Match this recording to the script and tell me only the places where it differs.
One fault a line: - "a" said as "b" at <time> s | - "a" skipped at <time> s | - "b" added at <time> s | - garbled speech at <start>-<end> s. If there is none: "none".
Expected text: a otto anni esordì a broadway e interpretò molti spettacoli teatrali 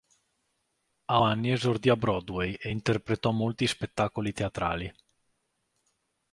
- "otto" skipped at 1.2 s